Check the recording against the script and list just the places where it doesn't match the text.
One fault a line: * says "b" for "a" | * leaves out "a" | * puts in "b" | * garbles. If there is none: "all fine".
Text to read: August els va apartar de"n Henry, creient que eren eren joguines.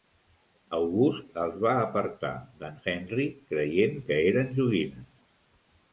* leaves out "eren"